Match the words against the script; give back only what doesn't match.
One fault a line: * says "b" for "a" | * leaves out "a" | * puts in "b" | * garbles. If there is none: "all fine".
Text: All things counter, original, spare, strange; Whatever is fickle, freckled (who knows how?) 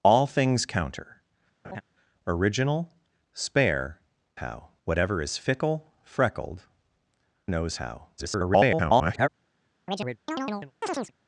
* says "how" for "strange"
* leaves out "who"
* garbles